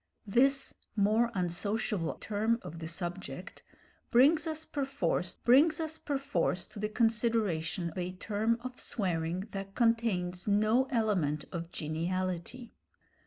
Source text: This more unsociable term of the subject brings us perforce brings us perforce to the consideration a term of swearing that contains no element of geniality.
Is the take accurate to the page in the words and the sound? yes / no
yes